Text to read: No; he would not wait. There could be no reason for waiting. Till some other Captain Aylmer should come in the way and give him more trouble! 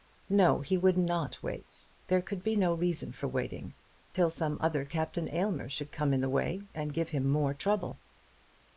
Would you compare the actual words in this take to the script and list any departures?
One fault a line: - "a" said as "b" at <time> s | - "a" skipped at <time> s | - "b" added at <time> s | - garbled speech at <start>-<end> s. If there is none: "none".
none